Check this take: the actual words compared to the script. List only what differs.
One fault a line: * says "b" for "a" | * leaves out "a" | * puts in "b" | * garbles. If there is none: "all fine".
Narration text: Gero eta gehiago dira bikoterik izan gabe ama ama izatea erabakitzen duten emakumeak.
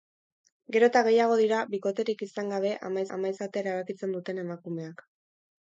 all fine